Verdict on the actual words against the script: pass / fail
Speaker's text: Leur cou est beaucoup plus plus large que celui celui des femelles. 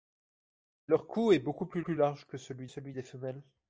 pass